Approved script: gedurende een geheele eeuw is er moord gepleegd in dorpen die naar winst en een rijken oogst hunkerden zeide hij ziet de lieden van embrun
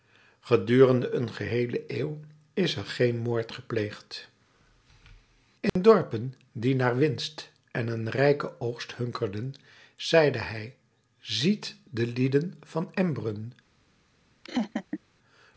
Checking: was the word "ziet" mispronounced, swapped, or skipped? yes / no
no